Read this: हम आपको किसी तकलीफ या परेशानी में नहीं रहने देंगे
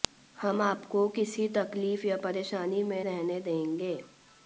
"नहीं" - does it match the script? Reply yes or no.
no